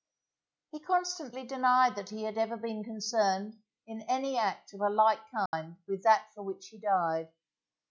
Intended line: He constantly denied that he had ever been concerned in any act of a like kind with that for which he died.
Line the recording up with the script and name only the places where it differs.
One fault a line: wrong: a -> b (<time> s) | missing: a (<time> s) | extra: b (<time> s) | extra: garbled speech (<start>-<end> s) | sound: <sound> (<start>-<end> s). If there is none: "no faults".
sound: dropout (5.5-5.5 s)